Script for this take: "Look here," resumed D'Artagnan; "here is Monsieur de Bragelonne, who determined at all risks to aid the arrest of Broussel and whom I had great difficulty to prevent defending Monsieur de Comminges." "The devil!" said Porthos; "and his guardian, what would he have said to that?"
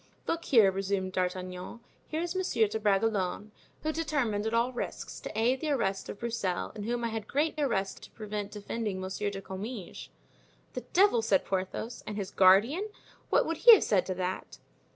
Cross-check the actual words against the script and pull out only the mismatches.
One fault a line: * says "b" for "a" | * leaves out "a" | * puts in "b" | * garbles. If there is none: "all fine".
* says "arrest" for "difficulty"